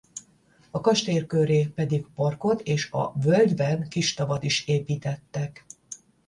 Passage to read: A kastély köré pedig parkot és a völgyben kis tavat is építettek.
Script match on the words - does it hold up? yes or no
yes